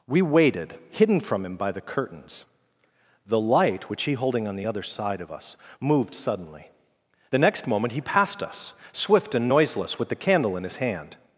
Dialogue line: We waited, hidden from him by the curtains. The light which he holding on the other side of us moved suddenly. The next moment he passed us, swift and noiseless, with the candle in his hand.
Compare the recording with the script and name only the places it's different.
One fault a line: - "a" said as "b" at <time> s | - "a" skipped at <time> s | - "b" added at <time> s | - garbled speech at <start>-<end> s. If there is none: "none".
none